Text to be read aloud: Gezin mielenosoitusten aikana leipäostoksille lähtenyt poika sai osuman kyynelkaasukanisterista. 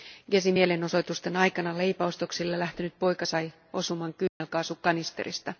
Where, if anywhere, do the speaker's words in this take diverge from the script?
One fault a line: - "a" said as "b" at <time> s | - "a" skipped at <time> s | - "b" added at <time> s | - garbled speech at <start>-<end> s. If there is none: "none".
none